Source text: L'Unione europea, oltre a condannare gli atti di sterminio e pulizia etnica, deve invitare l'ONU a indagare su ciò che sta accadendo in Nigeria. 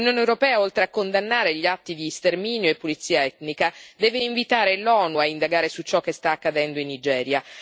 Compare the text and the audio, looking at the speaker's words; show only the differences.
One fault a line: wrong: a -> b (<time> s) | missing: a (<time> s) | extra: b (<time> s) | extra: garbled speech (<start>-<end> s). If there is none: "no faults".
no faults